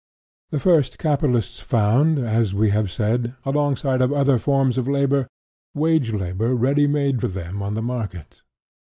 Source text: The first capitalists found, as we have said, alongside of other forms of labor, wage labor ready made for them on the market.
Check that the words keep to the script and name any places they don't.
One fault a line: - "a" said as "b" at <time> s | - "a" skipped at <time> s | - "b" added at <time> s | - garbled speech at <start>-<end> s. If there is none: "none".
none